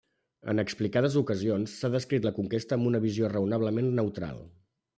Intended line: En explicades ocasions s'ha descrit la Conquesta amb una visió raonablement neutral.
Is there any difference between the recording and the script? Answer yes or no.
no